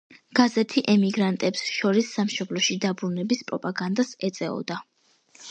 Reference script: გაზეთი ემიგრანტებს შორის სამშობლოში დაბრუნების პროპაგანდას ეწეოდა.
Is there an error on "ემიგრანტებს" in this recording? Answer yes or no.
no